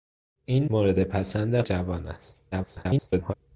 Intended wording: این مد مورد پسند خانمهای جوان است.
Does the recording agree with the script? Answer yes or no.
no